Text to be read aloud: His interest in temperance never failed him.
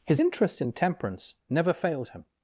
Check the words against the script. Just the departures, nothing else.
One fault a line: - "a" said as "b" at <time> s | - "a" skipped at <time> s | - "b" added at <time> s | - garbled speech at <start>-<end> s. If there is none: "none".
none